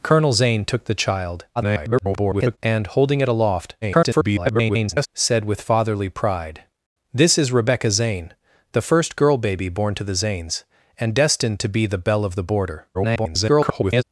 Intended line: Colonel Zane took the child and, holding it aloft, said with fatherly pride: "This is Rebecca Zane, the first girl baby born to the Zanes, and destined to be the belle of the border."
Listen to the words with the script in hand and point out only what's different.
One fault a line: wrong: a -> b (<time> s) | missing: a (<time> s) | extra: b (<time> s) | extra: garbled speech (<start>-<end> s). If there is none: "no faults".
extra: garbled speech (1.6-2.6 s)
extra: garbled speech (3.8-5.1 s)
extra: garbled speech (12.9-14.0 s)